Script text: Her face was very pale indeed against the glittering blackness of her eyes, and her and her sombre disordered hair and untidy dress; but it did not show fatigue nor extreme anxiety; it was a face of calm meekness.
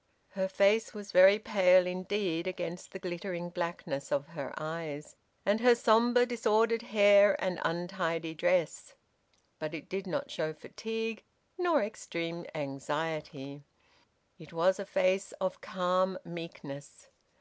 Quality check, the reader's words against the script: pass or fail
fail